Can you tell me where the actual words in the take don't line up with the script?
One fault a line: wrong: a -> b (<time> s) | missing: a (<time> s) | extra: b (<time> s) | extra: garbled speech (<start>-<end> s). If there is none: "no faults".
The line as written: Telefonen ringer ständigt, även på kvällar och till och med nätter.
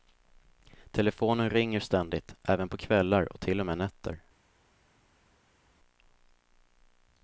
no faults